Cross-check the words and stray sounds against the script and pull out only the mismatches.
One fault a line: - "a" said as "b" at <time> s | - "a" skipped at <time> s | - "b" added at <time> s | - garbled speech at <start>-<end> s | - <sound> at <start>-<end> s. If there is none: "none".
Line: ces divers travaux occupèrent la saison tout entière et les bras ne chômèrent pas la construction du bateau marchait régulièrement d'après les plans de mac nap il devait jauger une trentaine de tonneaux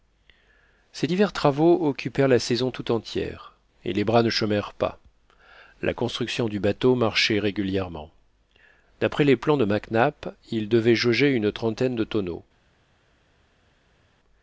none